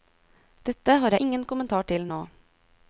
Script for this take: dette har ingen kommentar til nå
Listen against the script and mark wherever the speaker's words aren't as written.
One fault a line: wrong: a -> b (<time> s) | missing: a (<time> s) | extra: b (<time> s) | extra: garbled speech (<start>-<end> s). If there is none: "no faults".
no faults